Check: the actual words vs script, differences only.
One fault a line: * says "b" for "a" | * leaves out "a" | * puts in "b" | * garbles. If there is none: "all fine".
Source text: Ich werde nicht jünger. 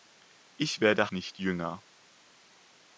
all fine